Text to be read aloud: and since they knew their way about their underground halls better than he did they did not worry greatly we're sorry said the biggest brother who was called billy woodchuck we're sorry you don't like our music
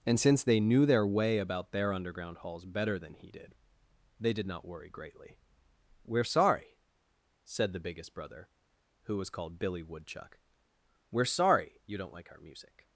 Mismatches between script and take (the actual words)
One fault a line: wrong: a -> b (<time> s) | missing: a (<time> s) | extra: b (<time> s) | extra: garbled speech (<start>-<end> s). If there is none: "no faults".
no faults